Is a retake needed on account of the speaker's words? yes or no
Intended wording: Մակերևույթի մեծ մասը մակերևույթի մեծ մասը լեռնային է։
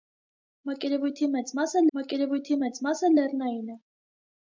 no